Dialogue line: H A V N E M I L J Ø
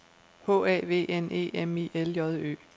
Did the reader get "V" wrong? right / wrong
right